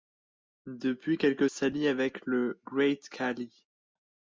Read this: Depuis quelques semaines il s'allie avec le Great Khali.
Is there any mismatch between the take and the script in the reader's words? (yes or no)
yes